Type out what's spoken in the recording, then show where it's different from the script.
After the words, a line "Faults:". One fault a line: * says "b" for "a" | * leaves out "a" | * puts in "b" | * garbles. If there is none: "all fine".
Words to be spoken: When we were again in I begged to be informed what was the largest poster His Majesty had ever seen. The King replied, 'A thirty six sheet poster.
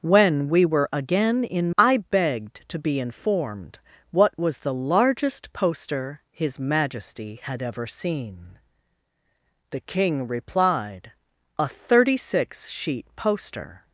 When we were again in I begged to be informed what was the largest poster His Majesty had ever seen. The King replied, 'A thirty six sheet poster.
Faults:
all fine